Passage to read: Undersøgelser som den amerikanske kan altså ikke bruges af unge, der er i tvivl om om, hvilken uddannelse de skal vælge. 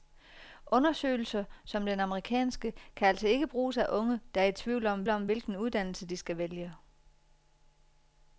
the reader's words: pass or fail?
pass